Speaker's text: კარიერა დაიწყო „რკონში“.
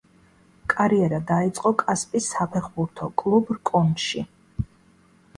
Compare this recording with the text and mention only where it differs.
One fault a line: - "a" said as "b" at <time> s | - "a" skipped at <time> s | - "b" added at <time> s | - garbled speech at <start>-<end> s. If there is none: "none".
- "კასპის საფეხბურთო კლუბ" added at 1.8 s